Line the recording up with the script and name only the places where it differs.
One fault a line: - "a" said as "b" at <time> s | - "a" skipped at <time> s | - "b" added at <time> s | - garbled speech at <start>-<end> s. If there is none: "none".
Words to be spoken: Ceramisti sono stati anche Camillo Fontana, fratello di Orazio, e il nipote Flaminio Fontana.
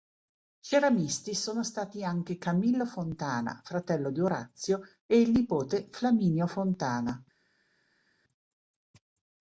none